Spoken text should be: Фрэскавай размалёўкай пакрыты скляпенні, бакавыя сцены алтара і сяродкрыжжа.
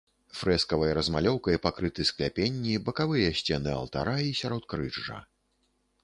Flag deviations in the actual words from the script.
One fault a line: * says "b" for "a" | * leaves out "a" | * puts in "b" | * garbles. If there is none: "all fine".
all fine